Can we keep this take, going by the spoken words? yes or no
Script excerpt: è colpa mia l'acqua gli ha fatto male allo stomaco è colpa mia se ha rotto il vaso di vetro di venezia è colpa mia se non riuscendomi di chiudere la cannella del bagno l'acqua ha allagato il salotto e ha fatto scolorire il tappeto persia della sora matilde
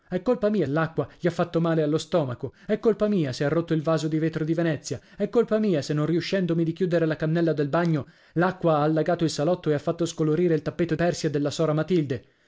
yes